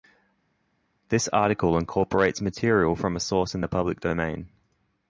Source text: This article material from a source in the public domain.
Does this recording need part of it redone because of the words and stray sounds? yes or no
yes